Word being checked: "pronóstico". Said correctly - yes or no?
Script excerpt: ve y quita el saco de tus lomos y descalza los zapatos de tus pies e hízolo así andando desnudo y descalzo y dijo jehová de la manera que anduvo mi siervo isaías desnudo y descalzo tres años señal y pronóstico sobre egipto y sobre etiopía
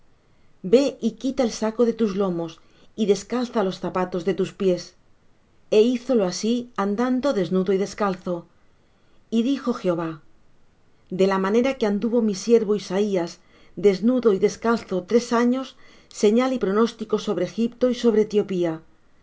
yes